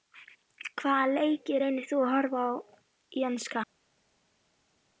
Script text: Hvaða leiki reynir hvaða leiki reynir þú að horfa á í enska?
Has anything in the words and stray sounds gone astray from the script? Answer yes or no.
yes